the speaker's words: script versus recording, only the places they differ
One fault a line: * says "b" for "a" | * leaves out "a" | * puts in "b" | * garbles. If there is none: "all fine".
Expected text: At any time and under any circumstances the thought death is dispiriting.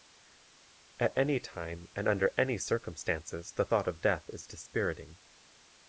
* puts in "of"